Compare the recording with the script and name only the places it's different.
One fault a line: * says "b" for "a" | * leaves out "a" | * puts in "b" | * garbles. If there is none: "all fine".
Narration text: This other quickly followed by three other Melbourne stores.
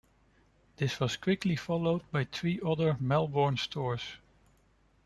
* says "was" for "other"